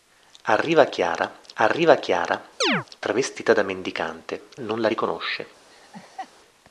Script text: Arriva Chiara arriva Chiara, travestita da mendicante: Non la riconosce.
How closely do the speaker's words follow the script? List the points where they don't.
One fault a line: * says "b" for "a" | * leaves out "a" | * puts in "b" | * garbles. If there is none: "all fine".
all fine